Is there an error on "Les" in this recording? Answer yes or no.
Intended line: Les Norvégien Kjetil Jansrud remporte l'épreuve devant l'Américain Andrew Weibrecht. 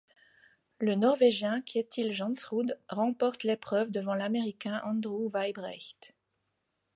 yes